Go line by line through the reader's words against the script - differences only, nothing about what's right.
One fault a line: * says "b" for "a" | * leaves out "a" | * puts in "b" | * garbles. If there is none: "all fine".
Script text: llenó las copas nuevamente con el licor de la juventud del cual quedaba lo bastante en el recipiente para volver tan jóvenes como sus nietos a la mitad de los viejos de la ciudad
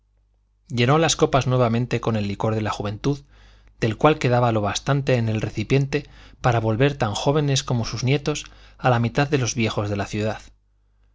all fine